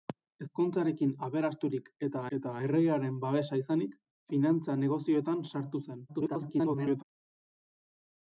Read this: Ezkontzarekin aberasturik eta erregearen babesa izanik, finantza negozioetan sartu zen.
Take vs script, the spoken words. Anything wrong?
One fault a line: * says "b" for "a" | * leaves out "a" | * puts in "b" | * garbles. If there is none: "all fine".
* puts in "eta"
* garbles